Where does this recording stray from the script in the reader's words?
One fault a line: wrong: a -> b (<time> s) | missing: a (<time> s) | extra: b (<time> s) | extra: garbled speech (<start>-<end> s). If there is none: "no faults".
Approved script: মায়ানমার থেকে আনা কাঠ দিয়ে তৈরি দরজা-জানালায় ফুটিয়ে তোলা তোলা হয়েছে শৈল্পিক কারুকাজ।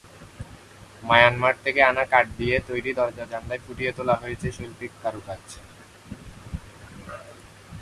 missing: তোলা (4.1 s)